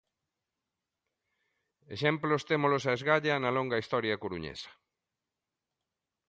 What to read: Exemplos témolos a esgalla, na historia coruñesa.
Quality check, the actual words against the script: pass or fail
fail